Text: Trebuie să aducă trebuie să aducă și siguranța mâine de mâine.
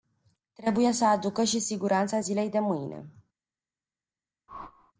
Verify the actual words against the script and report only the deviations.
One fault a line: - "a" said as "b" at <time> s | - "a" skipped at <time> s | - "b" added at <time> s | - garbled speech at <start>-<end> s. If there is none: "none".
- "trebuie să aducă" skipped at 1.4 s
- "mâine" said as "zilei" at 2.2 s